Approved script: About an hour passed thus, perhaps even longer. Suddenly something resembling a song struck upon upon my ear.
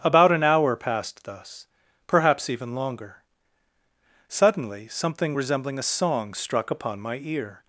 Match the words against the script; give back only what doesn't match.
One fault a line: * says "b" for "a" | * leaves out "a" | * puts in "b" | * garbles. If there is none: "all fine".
* leaves out "upon"